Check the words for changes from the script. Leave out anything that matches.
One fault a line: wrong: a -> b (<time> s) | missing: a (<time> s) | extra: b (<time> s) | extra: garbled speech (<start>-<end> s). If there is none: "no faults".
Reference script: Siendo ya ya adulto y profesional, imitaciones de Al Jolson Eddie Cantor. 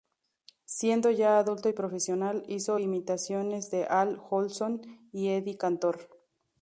missing: ya (1.4 s)
extra: hizo (2.5 s)
extra: y (5.1 s)